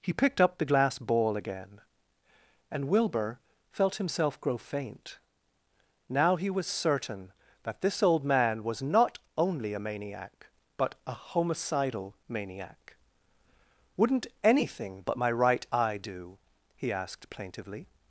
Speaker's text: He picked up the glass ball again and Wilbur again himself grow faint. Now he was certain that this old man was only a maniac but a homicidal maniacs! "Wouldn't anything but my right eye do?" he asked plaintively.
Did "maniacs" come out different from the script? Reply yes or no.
yes